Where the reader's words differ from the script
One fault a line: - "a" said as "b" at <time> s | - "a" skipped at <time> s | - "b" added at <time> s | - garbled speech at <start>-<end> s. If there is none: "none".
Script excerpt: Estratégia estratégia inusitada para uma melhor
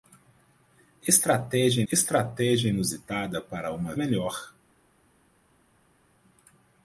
none